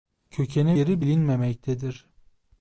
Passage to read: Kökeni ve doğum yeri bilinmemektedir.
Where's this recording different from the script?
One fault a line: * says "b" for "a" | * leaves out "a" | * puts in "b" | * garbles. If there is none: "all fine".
* leaves out "ve doğum"